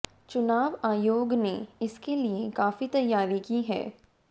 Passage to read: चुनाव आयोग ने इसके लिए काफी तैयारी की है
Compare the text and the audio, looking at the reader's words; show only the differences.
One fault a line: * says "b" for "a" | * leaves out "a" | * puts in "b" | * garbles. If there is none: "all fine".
all fine